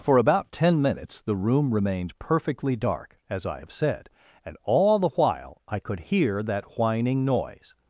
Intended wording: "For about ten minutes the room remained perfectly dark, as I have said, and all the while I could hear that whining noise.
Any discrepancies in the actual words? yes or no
no